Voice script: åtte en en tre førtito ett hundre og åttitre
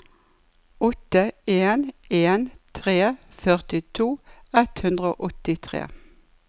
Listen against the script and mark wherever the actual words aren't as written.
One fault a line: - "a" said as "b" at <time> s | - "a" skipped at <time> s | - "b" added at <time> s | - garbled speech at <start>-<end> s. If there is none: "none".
none